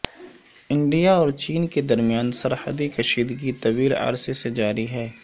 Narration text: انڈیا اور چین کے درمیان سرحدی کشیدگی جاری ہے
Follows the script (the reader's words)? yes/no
no